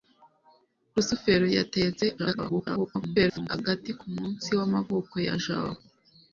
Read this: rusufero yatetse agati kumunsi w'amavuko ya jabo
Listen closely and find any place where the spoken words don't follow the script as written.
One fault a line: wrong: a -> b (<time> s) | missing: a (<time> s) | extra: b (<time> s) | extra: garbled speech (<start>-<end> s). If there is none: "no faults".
extra: garbled speech (2.2-3.5 s)